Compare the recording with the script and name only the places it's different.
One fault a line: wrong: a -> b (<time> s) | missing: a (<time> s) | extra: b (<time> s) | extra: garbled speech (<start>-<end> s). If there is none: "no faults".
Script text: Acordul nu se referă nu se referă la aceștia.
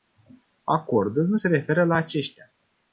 missing: nu se referă (1.8 s)